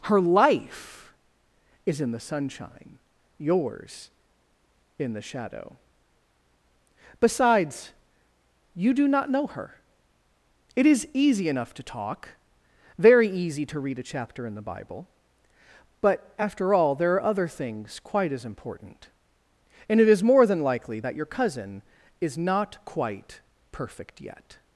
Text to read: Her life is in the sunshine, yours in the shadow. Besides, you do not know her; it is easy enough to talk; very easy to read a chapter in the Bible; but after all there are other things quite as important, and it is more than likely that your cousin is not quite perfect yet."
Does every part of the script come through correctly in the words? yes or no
yes